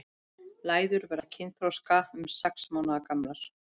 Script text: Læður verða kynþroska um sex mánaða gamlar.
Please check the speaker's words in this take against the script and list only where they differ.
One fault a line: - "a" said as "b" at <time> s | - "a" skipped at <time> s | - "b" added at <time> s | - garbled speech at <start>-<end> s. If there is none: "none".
none